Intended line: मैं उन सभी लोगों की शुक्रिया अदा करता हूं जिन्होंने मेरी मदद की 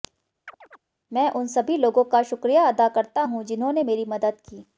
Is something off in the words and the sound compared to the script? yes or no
yes